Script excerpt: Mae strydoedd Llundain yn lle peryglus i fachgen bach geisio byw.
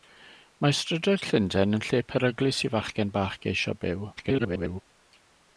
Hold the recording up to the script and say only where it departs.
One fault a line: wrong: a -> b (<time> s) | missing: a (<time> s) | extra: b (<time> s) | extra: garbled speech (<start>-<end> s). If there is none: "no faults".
extra: garbled speech (4.2-4.8 s)